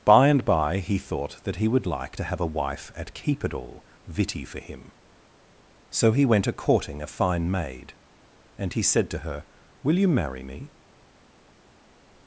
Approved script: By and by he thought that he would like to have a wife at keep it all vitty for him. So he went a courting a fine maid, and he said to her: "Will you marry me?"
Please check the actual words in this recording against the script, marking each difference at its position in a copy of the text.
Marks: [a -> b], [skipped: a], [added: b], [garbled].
By and by he thought that he would like to have a wife at keep it all vitty for him. So he went a courting a fine maid, and he said to her: "Will you marry me?"